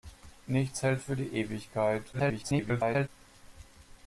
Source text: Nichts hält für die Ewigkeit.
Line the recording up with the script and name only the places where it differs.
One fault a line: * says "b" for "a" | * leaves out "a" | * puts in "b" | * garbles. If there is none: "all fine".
* garbles